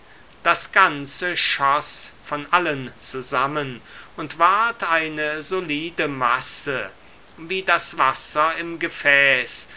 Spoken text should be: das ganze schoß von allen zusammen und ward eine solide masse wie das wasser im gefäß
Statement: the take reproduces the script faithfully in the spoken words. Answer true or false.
true